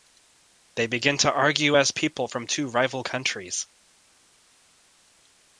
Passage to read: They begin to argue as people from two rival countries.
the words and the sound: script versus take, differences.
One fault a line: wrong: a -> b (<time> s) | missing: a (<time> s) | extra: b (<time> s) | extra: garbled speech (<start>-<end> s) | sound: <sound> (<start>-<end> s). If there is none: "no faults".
no faults